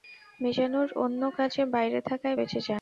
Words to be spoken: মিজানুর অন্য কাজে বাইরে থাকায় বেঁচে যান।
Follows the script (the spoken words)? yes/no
yes